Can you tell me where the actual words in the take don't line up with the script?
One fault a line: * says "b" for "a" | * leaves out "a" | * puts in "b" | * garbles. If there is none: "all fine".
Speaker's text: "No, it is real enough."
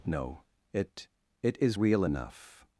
* puts in "it"